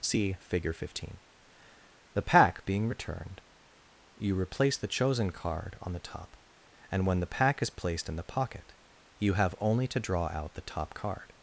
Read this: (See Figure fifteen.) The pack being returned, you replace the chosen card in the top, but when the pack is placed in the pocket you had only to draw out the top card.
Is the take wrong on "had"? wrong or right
wrong